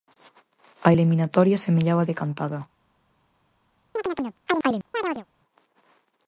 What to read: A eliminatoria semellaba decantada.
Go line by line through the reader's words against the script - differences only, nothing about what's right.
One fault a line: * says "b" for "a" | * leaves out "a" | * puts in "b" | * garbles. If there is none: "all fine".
all fine